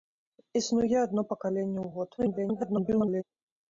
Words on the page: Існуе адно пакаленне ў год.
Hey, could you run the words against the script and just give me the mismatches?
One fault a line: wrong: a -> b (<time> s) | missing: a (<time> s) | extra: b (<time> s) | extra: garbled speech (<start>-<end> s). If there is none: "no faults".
extra: garbled speech (2.2-3.2 s)